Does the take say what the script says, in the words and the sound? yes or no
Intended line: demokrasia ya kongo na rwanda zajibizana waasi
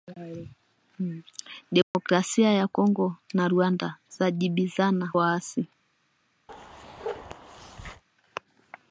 no